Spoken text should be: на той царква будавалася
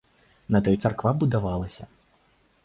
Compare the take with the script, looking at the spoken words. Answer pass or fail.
pass